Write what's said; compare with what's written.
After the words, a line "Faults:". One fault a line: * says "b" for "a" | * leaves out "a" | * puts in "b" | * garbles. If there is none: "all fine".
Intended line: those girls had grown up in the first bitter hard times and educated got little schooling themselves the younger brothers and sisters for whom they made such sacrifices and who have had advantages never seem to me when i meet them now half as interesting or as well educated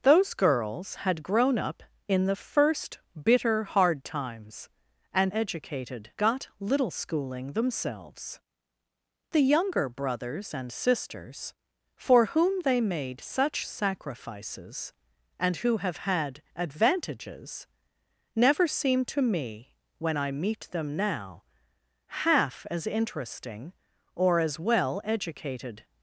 those girls had grown up in the first bitter hard times and educated got little schooling themselves the younger brothers and sisters for whom they made such sacrifices and who have had advantages never seem to me when i meet them now half as interesting or as well educated
Faults:
all fine